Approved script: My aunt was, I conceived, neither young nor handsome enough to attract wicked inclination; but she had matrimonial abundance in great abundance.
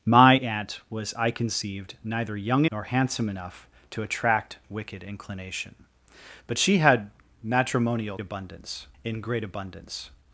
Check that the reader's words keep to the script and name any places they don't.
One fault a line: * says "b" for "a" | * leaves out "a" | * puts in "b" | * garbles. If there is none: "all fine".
all fine